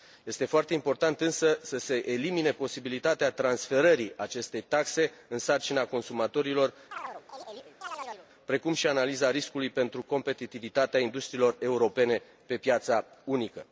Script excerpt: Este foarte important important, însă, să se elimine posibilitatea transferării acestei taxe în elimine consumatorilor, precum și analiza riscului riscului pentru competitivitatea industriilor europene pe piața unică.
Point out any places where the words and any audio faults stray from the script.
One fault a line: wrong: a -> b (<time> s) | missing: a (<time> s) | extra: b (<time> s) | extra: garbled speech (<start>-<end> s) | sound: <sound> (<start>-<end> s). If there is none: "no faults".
missing: important (1.2 s)
wrong: elimine -> sarcina (5.4 s)
sound: chirp (6.9-8.3 s)
missing: riscului (9.7 s)